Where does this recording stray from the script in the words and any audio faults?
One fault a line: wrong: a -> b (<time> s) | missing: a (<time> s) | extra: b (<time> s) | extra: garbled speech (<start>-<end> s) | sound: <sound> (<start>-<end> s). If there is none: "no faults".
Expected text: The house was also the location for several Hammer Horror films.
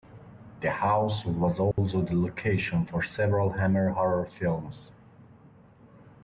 sound: dropout (1.7-1.8 s)